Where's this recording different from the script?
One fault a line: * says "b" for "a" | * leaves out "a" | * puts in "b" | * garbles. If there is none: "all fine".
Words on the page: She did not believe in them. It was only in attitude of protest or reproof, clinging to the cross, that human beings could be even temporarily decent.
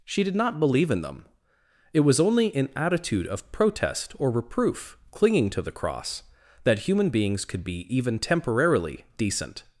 all fine